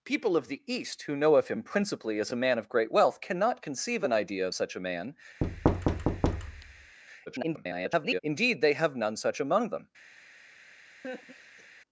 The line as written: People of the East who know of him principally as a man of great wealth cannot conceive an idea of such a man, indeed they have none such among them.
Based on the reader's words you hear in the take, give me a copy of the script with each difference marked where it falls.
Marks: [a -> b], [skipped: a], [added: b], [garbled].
People of the East who know of him principally as a man of great wealth cannot conceive an idea of such a man, [garbled] indeed they have none such among them.